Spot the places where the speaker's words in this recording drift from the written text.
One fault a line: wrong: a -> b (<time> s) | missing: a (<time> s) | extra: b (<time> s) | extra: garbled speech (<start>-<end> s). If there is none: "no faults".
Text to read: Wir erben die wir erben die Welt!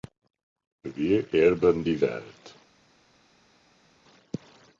missing: wir erben die (2.0 s)